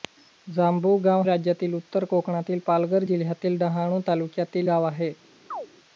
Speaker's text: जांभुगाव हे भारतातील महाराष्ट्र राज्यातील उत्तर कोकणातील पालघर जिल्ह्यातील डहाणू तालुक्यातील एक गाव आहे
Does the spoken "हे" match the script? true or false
false